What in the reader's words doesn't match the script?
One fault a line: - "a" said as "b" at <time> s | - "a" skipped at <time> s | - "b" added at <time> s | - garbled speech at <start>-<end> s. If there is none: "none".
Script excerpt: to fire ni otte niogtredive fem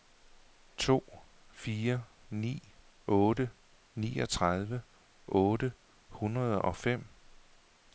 - "otte hundrede og" added at 5.3 s